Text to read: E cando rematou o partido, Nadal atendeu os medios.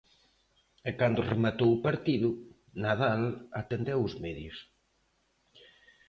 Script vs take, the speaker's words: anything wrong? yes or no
no